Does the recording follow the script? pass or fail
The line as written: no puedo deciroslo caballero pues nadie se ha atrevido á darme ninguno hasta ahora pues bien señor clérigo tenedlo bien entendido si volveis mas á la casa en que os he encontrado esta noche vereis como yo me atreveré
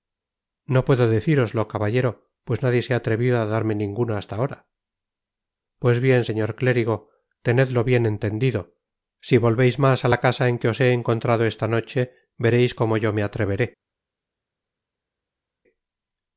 pass